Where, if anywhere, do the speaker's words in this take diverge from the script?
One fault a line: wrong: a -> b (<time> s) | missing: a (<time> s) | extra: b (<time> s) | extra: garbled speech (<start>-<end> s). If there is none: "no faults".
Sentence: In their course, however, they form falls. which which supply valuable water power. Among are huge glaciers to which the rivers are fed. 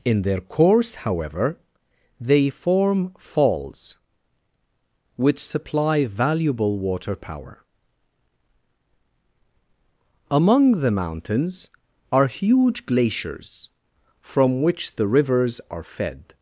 missing: which (5.4 s)
extra: the mountains (10.8 s)
wrong: to -> from (14.2 s)